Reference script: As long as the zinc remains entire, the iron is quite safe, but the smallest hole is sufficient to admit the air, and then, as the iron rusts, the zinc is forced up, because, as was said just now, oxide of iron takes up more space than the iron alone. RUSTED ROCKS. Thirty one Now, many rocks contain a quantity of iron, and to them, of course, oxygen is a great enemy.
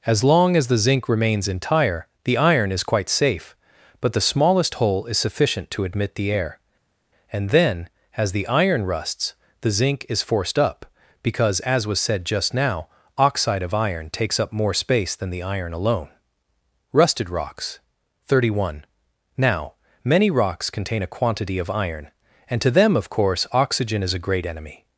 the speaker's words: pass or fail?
pass